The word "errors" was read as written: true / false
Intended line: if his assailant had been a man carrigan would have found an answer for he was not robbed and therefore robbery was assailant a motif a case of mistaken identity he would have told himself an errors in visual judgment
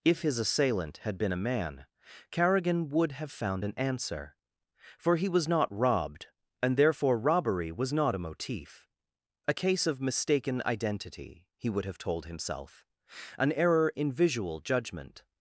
false